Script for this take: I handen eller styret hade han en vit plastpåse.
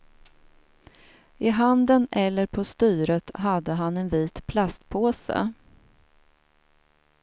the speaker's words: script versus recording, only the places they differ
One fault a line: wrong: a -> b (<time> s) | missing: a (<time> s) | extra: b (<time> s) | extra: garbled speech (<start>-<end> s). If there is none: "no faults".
extra: på (2.5 s)